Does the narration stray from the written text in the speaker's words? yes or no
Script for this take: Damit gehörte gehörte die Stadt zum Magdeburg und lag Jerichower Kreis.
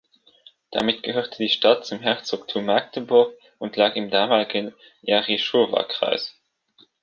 yes